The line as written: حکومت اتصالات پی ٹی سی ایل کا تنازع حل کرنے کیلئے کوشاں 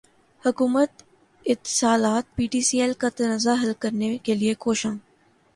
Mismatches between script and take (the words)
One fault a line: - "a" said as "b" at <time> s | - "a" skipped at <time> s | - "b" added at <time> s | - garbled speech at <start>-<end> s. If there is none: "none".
none